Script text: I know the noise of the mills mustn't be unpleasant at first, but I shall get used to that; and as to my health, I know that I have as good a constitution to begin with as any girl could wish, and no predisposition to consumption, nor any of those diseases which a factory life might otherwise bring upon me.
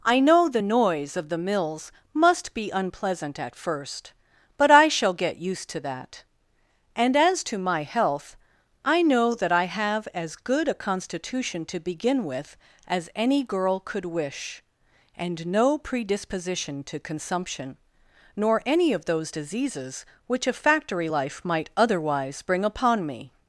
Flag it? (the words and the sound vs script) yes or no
yes